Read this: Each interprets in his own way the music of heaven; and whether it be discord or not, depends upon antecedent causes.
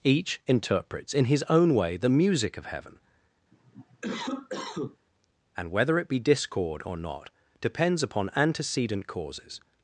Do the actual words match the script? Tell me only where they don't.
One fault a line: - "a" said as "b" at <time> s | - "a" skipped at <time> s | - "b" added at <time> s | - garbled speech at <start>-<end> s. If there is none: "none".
none